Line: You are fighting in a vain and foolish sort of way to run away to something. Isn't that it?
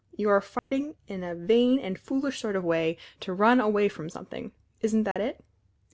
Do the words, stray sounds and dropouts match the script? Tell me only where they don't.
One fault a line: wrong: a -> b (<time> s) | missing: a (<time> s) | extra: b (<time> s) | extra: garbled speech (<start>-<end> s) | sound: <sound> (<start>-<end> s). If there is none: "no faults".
sound: dropout (0.6-0.7 s)
wrong: to -> from (3.9 s)
sound: dropout (5.1-5.2 s)